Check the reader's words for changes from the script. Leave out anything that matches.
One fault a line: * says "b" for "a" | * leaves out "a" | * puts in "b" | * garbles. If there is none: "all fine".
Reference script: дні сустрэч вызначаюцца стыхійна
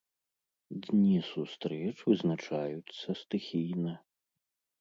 all fine